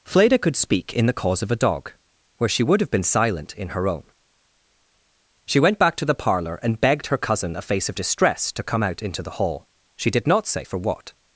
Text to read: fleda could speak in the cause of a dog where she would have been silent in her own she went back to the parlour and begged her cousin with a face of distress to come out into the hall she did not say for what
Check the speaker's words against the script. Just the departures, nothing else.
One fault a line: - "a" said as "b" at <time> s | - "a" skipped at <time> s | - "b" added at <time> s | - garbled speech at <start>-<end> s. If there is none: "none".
- "with" skipped at 7.6 s